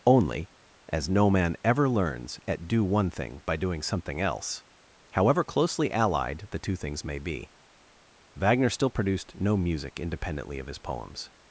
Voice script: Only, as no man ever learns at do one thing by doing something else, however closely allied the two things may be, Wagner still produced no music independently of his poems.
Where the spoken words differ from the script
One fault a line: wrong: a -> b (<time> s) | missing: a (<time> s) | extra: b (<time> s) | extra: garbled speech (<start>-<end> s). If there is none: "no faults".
no faults